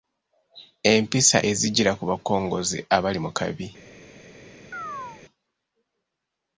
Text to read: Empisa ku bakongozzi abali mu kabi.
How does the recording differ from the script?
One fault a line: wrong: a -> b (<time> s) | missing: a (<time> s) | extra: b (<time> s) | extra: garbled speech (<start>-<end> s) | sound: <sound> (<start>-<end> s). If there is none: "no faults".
extra: ezijjira (1.5 s)
sound: chirp (4.7-5.2 s)